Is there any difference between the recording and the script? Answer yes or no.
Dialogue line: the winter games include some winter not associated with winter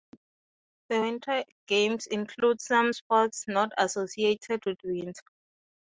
yes